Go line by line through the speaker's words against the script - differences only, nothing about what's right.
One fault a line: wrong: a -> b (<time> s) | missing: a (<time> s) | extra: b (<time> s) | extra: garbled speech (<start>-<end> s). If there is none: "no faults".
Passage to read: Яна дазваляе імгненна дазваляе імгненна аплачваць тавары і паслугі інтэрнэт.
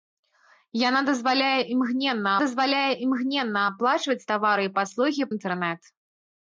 no faults